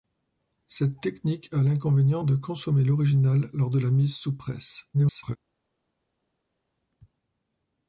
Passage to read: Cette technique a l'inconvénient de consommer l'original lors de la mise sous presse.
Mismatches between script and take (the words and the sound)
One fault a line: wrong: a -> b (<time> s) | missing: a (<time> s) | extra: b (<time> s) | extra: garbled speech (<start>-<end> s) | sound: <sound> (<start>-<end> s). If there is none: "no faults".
extra: garbled speech (4.9-5.4 s)